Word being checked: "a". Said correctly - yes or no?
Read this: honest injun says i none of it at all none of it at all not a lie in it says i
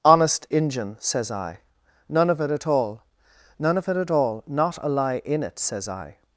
yes